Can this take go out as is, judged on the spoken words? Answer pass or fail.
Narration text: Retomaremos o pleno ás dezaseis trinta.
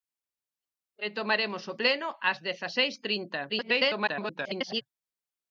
fail